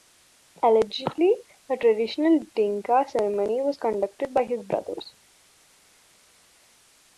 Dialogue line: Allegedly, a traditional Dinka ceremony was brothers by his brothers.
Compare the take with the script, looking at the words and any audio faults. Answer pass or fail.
fail